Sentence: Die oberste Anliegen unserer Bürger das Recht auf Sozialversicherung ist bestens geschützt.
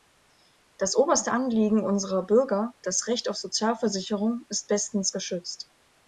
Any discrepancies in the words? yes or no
yes